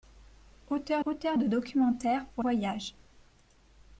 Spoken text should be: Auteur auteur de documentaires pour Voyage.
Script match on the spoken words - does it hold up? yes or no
yes